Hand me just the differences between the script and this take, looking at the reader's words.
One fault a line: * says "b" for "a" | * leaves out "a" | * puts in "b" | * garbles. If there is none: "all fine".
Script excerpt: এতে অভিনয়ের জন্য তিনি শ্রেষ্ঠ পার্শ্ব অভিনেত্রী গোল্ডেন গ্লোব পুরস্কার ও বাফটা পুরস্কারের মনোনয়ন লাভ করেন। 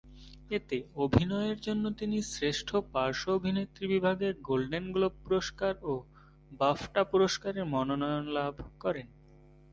* puts in "বিভাগে"